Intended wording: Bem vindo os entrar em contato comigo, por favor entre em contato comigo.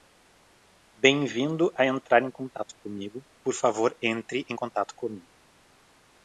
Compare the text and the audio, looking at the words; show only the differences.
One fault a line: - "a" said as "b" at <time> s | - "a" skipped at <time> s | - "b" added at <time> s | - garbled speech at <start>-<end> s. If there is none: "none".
- "os" said as "a" at 1.8 s